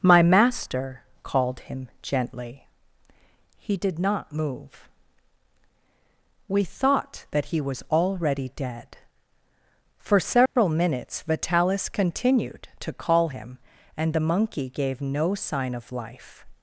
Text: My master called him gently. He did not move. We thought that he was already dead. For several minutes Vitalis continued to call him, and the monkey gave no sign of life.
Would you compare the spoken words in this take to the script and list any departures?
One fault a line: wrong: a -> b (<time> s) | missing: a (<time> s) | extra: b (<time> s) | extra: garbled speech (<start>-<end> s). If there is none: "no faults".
no faults